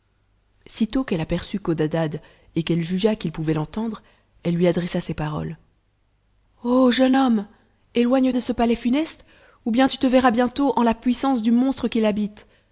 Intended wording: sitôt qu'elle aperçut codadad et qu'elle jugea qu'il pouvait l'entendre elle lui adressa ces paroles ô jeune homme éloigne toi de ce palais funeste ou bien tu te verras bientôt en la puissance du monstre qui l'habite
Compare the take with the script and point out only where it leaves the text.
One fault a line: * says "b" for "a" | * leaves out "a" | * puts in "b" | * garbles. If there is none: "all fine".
* leaves out "toi"